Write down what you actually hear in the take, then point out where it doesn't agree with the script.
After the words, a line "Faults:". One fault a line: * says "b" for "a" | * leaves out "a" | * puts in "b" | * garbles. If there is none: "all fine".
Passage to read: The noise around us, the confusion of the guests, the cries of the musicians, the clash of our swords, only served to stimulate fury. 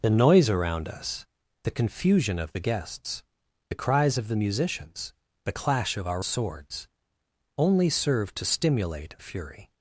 The noise around us, the confusion of the guests, the cries of the musicians, the clash of our swords, only served to stimulate fury.
Faults:
all fine